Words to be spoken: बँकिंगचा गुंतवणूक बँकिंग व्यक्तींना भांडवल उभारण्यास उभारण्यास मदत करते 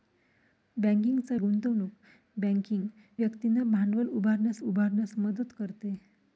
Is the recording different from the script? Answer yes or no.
no